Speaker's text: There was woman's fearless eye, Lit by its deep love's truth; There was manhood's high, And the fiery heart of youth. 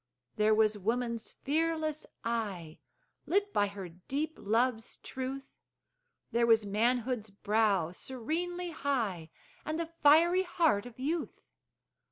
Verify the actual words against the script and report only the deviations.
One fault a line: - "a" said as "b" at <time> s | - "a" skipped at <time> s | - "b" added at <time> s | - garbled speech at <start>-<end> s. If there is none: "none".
- "its" said as "her" at 3.7 s
- "brow serenely" added at 7.3 s